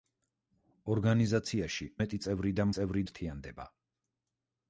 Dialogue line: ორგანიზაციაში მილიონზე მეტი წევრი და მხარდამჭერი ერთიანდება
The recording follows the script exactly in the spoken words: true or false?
false